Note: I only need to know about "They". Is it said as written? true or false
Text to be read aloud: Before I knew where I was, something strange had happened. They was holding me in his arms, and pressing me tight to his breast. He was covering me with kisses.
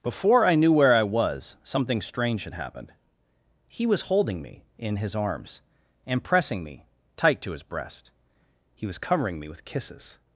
false